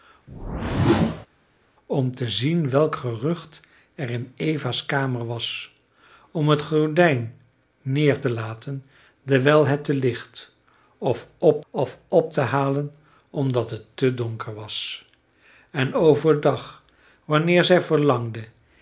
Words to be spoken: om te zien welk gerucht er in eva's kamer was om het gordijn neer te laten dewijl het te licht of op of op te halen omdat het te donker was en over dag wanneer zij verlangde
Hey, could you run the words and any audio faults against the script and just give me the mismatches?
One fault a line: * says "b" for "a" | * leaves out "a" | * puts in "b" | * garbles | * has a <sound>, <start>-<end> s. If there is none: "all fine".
* has a whoosh, 0.3-1.3 s